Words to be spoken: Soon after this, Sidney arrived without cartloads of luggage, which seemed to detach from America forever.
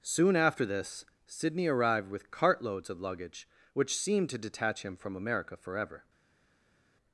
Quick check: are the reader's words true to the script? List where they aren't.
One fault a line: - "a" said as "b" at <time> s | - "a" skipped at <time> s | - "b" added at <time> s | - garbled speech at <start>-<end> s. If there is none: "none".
- "without" said as "with" at 2.1 s
- "him" added at 4.8 s